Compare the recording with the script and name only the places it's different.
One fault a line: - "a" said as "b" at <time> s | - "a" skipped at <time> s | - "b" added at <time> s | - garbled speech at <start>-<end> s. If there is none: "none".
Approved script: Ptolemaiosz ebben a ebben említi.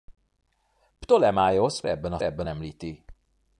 none